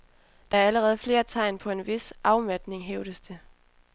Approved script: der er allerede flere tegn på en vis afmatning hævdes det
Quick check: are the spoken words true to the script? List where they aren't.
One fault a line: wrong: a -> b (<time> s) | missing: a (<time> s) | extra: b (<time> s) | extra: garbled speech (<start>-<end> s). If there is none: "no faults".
no faults